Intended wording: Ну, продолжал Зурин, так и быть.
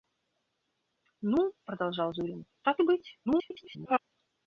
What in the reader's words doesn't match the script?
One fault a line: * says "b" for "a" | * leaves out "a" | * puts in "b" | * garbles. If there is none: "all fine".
* garbles